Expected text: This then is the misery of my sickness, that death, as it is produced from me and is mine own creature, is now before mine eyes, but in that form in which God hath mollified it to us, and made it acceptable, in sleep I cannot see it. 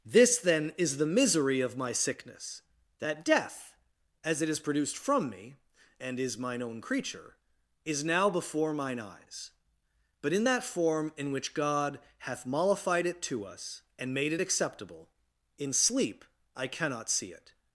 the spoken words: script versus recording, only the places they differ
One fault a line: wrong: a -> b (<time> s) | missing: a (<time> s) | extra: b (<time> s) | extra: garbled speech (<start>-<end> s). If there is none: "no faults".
no faults